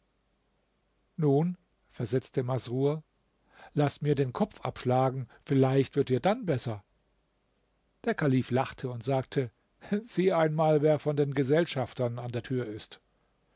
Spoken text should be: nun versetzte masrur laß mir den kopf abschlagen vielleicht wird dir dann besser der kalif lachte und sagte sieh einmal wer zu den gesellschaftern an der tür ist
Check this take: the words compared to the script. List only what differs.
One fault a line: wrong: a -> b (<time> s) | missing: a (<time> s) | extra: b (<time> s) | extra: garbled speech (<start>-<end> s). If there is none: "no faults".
wrong: zu -> von (11.0 s)